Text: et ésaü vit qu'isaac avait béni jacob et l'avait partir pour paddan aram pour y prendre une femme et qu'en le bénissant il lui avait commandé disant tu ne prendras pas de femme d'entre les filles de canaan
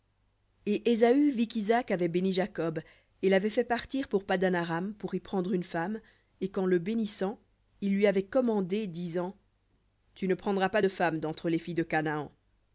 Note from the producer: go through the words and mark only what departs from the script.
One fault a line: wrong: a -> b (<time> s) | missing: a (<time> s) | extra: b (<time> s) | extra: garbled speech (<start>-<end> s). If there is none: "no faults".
extra: fait (3.5 s)